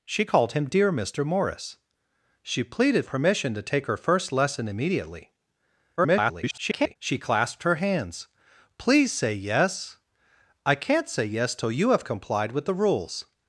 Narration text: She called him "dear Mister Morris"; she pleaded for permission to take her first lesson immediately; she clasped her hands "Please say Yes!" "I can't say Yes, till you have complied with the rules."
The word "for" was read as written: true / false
false